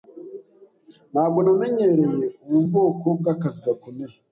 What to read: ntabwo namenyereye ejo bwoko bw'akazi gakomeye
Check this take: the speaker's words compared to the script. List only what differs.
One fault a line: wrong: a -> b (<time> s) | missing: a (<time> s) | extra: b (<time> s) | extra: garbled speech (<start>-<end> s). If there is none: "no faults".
wrong: ejo -> ubu (2.5 s)